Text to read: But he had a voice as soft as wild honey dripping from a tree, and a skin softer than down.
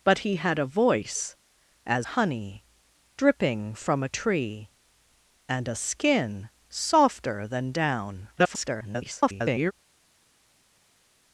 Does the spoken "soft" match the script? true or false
false